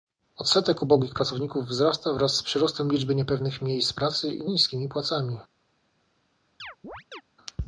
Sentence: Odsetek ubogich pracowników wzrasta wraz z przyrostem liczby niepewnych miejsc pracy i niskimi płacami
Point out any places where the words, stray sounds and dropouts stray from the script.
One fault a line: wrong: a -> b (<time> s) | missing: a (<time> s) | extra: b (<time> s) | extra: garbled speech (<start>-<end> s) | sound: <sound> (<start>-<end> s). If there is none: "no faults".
sound: chirp (6.6-7.2 s)